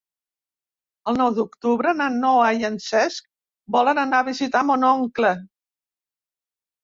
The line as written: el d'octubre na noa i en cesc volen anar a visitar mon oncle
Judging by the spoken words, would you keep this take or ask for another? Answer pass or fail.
fail